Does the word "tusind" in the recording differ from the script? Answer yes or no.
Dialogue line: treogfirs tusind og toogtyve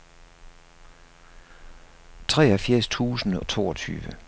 no